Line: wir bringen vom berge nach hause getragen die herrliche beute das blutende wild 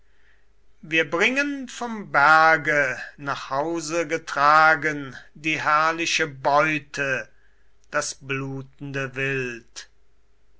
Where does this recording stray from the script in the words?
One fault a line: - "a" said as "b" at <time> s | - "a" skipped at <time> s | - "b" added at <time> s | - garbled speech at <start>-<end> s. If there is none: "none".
none